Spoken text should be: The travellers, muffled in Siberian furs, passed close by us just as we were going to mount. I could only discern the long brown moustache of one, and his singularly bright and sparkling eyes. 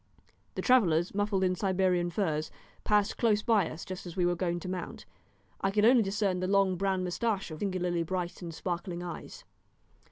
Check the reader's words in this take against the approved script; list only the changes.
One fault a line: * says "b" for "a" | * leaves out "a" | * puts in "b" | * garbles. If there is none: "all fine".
* leaves out "one and his"